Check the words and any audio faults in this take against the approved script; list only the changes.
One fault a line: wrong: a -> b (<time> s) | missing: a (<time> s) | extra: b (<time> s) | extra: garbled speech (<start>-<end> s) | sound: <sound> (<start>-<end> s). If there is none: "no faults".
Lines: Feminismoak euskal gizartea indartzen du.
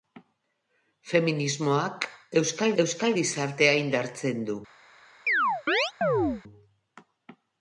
extra: euskal (2.8 s)
sound: chirp (5.3-6.4 s)